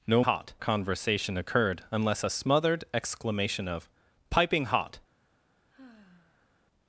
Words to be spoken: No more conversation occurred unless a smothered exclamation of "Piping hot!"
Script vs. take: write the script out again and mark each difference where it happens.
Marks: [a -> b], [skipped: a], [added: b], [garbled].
No [more -> hot] conversation occurred unless a smothered exclamation of "Piping hot!"